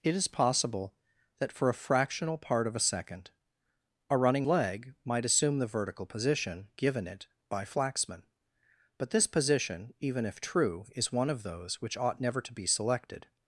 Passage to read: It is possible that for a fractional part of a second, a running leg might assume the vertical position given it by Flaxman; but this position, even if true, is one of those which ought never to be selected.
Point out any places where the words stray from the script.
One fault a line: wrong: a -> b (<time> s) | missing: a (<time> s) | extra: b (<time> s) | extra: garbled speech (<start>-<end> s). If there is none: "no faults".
no faults